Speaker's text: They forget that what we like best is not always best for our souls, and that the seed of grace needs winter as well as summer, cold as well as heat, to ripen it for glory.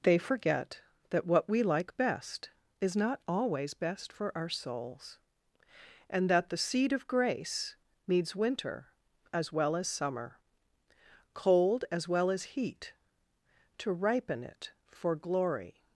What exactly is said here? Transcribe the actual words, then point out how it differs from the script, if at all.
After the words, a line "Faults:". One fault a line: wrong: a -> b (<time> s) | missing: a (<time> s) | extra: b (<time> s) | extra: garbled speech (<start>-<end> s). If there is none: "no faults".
They forget that what we like best is not always best for our souls, and that the seed of grace needs winter as well as summer, cold as well as heat, to ripen it for glory.
Faults:
no faults